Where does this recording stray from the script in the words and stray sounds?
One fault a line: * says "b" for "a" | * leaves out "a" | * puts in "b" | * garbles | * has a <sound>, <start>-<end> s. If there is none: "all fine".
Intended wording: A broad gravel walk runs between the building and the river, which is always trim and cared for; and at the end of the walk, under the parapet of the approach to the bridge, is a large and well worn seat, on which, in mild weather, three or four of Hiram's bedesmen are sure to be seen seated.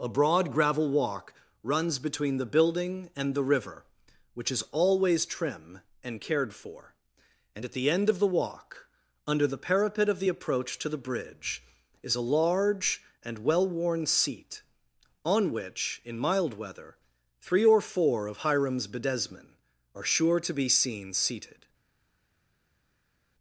all fine